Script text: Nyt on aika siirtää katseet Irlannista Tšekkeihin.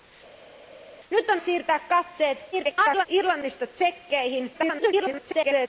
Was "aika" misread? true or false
true